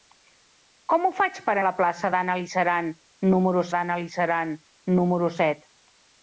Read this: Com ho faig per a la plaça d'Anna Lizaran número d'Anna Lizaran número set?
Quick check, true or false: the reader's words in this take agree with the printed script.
true